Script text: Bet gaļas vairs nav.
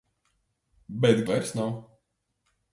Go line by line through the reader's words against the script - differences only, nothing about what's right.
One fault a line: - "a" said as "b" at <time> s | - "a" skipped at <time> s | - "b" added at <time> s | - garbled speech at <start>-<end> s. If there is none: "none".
- "gaļas" skipped at 1.2 s